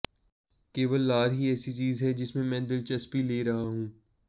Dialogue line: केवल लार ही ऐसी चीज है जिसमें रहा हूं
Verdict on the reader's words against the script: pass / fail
fail